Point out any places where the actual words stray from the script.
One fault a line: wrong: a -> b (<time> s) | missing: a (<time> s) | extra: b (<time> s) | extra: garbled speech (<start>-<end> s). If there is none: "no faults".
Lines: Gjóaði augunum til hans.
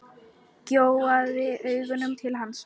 no faults